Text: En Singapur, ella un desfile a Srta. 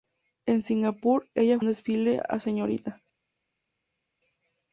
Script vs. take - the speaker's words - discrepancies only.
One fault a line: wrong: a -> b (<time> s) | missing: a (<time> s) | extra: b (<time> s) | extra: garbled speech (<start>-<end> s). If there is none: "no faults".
no faults